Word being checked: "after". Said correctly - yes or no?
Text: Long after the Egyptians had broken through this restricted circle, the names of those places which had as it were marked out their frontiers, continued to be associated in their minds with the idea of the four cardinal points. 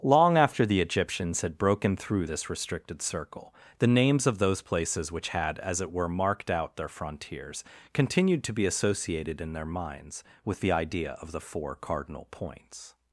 yes